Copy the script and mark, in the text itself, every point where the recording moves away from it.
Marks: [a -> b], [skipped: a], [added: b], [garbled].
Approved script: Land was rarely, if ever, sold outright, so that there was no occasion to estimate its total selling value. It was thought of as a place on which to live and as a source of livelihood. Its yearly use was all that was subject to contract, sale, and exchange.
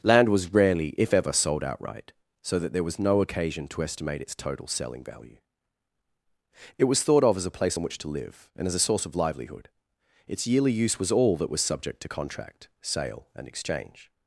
Land was rarely, if ever, sold outright, so that there was no occasion to estimate its total selling value. It was thought of as a place on which to live and as a source of livelihood. Its yearly use was all that was subject to contract, sale, and exchange.